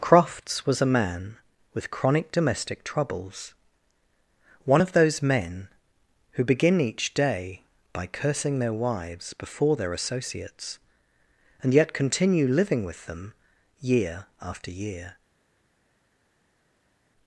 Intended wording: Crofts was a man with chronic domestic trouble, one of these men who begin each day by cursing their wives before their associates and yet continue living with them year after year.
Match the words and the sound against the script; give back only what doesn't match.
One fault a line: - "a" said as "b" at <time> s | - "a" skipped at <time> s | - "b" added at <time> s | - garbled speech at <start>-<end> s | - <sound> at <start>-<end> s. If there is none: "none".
- "trouble" said as "troubles" at 2.8 s
- "these" said as "those" at 4.9 s